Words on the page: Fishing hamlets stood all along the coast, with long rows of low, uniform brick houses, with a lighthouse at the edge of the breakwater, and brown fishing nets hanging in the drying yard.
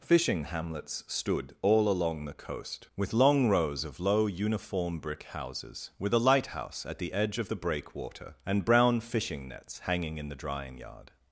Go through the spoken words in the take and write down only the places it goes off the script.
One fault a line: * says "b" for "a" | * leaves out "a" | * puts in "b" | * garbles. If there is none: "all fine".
all fine